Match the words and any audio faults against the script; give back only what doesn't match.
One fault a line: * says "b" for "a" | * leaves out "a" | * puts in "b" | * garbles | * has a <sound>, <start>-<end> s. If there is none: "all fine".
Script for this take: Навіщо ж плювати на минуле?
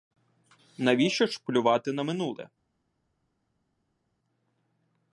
all fine